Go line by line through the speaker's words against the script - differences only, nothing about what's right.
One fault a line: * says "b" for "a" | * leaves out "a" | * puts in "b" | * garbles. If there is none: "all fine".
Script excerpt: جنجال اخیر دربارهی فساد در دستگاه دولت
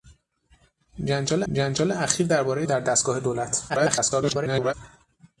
* puts in "جنجال"
* leaves out "فساد"
* garbles